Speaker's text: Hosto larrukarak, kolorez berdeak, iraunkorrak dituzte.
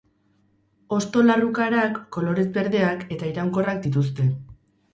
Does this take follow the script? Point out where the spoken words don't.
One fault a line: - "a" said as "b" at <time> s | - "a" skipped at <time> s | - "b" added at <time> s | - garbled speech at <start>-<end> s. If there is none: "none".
- "eta" added at 3.2 s